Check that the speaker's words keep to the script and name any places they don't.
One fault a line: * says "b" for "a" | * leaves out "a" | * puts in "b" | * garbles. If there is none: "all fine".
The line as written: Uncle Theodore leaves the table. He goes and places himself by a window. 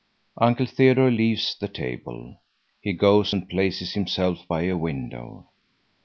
all fine